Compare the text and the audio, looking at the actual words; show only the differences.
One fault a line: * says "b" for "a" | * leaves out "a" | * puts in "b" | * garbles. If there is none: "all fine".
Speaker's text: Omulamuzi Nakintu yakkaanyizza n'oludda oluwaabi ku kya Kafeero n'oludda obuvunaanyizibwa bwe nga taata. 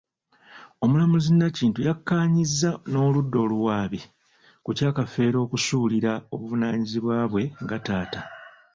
* says "okusuulira" for "n'oludda"